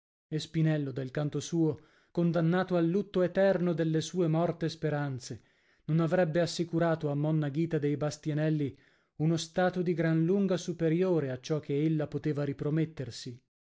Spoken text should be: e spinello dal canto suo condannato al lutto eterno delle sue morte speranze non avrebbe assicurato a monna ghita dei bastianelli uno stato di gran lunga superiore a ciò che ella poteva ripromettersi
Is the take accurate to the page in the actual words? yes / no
yes